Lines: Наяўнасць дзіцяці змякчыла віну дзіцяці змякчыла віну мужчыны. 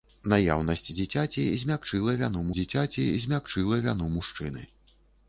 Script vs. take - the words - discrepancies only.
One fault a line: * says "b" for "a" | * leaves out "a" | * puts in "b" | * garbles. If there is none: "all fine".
all fine